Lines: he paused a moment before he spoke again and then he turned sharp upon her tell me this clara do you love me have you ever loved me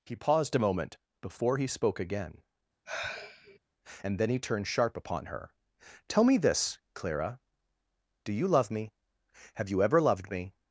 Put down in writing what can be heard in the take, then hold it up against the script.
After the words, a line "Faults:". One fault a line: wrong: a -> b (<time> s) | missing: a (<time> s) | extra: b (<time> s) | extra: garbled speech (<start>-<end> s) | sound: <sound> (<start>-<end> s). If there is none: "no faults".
he paused a moment before he spoke again and then he turned sharp upon her tell me this clara do you love me have you ever loved me
Faults:
sound: sigh (2.9-3.6 s)